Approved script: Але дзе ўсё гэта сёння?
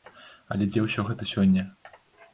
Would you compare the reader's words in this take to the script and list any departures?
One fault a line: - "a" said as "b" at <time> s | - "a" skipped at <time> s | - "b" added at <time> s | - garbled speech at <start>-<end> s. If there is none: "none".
none